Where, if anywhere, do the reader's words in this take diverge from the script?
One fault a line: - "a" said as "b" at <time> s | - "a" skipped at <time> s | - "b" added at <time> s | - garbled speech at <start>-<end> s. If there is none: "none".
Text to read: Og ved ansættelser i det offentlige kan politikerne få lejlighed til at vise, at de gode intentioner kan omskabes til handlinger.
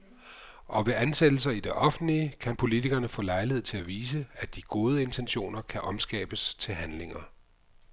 none